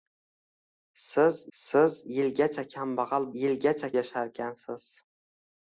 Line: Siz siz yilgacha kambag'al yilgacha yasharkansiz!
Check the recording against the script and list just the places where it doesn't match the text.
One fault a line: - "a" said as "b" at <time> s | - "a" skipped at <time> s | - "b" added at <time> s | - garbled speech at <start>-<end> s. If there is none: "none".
none